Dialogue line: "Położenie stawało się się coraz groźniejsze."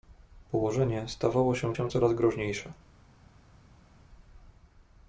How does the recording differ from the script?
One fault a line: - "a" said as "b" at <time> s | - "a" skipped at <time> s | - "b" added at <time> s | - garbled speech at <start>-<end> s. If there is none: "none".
none